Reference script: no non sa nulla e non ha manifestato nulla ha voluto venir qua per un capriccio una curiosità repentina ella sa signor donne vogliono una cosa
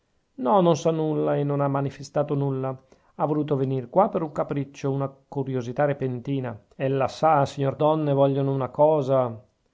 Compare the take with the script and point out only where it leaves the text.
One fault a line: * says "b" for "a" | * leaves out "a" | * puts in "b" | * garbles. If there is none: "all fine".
all fine